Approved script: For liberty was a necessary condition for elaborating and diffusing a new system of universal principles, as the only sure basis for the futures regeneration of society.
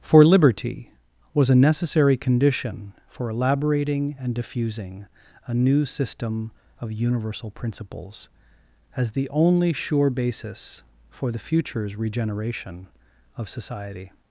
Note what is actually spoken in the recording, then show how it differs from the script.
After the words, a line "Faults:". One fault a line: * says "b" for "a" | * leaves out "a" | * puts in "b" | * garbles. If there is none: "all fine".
For liberty was a necessary condition for elaborating and diffusing a new system of universal principles, as the only sure basis for the futures regeneration of society.
Faults:
all fine